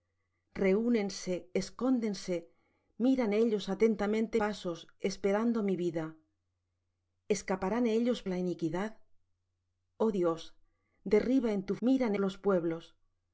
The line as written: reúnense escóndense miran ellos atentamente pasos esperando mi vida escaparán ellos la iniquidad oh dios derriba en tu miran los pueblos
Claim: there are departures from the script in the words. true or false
false